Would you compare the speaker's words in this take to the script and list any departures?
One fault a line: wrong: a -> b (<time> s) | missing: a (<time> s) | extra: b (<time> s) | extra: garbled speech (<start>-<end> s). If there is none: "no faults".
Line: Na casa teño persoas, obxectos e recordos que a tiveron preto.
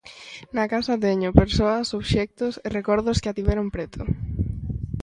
no faults